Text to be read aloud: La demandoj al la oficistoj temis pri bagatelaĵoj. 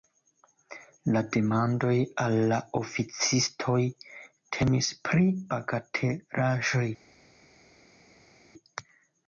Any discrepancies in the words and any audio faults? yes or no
no